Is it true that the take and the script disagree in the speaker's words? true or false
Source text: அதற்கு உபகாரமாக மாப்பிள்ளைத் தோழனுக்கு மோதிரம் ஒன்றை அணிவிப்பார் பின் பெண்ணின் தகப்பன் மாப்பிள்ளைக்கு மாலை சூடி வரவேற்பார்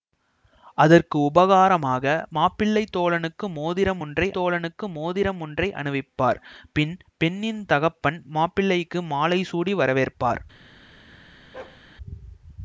true